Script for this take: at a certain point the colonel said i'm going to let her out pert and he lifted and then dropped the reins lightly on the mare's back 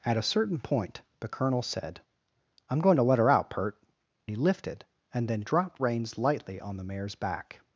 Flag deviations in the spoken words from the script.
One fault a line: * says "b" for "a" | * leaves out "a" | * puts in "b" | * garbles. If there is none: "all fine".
* leaves out "and"
* leaves out "the"